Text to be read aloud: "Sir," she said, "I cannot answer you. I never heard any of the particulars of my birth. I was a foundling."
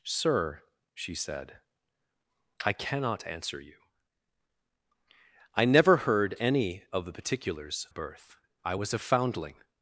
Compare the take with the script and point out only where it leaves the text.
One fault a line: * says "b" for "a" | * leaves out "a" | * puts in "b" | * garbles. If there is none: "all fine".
* leaves out "of my"